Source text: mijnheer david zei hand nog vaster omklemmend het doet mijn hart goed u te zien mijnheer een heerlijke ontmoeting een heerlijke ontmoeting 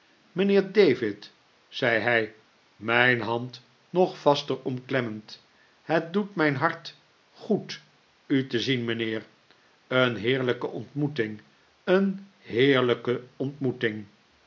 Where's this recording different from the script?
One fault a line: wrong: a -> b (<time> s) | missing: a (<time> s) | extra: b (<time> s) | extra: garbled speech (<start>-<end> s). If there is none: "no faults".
extra: hij mijn (2.0 s)